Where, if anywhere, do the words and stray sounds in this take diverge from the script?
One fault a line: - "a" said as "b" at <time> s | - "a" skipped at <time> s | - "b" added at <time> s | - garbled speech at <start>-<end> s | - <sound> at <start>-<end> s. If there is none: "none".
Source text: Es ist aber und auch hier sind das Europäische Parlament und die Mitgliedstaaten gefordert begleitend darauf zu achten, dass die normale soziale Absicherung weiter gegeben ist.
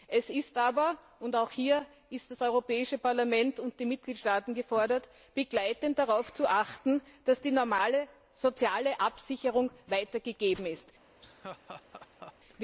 - laugh at 11.2-12.3 s